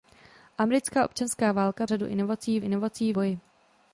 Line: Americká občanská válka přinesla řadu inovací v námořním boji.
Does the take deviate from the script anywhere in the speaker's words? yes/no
yes